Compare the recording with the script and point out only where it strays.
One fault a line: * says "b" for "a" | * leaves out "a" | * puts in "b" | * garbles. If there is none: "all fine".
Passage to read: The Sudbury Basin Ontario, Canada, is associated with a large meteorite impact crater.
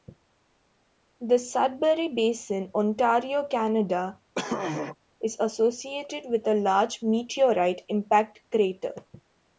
all fine